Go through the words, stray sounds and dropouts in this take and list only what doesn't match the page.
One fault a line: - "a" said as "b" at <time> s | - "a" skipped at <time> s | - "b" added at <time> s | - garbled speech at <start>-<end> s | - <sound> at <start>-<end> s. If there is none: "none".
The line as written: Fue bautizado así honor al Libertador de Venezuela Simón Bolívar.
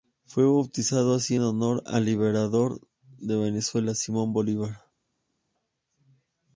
none